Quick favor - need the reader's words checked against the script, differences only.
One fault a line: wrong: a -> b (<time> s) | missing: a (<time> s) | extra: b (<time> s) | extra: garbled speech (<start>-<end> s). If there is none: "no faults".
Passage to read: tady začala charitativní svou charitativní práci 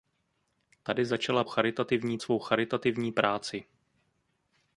no faults